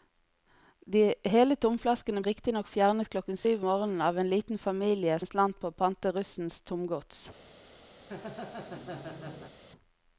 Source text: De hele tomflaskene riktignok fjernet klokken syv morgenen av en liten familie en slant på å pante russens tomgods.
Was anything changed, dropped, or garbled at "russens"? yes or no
no